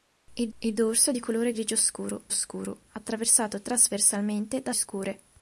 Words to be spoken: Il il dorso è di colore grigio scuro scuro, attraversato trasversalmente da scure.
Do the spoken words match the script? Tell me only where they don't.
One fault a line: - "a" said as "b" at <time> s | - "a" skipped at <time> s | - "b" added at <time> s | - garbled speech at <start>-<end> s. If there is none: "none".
none